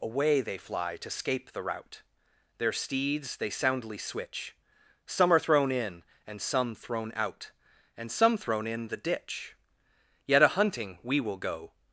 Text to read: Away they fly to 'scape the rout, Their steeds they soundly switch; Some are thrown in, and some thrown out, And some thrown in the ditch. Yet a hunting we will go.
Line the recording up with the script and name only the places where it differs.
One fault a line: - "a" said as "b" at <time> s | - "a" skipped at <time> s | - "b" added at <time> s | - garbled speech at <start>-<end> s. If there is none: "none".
none